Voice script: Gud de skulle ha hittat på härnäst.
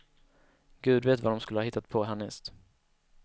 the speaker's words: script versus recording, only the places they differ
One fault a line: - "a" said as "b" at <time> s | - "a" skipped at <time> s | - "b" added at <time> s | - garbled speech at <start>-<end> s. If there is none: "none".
- "vet vad" added at 1.1 s